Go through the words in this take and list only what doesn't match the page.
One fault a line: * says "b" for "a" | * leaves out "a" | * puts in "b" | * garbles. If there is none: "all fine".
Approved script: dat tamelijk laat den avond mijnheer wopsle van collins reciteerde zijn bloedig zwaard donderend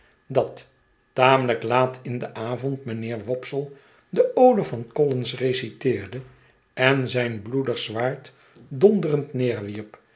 * puts in "in"
* puts in "de ode"
* puts in "en"